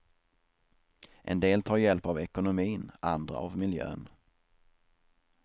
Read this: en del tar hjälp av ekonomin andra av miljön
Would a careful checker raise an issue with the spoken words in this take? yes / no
no